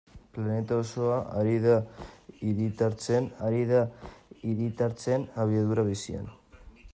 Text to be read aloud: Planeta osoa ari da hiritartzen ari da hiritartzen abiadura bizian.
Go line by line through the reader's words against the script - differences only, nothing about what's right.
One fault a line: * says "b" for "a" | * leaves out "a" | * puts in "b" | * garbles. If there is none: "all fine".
all fine